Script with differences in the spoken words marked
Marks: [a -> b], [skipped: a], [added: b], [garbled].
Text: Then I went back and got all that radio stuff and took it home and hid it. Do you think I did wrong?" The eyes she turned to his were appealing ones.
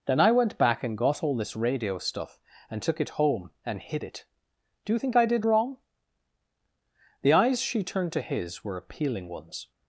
Then I went back and got all [that -> this] radio stuff and took it home and hid it. Do you think I did wrong?" The eyes she turned to his were appealing ones.